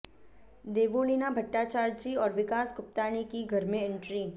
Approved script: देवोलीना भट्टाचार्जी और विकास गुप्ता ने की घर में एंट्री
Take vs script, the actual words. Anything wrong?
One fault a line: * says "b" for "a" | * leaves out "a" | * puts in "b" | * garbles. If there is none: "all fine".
all fine